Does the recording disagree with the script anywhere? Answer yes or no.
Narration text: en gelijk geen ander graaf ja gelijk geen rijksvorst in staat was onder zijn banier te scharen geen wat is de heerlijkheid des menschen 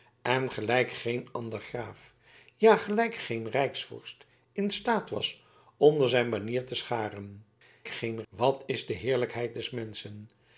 no